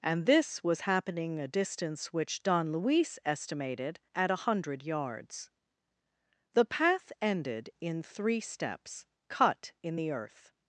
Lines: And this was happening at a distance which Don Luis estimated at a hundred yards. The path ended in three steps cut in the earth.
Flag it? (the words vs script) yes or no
yes